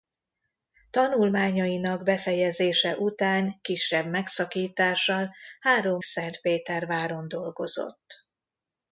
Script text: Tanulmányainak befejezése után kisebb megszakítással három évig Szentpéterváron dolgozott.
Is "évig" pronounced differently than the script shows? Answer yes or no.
yes